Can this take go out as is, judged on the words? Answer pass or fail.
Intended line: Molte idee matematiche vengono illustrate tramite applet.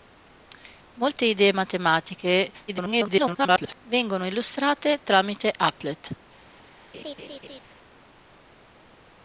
fail